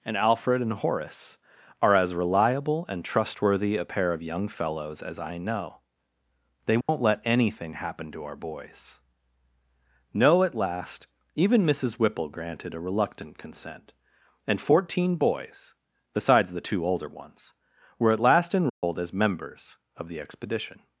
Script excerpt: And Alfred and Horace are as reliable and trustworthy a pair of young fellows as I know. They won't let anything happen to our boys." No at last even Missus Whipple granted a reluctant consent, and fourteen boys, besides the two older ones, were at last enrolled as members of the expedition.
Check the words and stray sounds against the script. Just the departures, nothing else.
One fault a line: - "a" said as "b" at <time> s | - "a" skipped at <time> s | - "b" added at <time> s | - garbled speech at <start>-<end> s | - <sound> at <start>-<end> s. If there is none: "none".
- dropout at 6.8-6.9 s
- dropout at 18.7-18.8 s